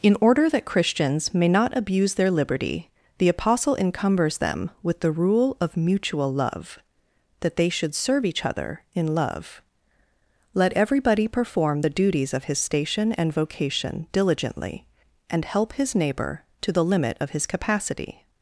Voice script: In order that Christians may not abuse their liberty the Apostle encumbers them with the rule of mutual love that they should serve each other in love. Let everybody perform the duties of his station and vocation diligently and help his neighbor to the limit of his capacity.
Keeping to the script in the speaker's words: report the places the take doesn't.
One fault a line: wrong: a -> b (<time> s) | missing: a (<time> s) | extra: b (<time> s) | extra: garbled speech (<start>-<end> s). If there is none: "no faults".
no faults